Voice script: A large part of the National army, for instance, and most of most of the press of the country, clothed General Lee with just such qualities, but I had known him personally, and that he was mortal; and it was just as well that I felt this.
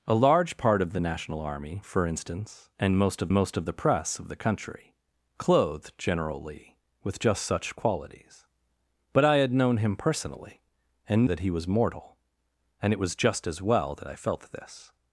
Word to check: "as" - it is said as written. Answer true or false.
true